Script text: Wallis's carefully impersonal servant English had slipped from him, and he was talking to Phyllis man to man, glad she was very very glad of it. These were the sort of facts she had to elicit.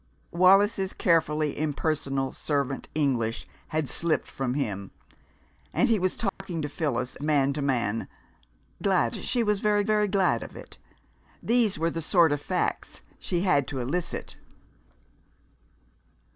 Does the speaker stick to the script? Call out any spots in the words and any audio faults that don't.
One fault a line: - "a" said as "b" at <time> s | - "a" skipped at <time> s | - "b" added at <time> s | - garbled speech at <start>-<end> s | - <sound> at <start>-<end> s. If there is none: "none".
- dropout at 6.3-6.4 s